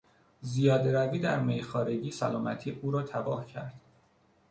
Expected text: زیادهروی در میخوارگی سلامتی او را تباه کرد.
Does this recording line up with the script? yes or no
yes